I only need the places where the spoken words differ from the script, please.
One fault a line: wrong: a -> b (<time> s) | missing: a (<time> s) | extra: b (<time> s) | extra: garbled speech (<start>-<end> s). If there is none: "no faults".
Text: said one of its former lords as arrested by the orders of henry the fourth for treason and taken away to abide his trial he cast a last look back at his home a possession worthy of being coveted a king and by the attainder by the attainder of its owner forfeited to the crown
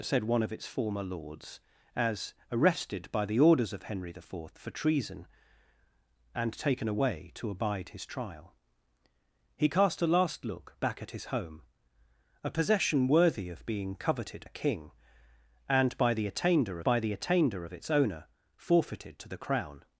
no faults